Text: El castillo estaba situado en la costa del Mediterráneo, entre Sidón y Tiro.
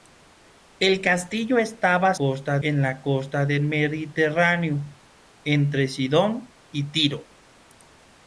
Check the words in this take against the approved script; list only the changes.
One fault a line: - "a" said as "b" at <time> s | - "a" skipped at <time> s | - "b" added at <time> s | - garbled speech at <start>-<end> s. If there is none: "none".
- "situado" said as "costa" at 2.2 s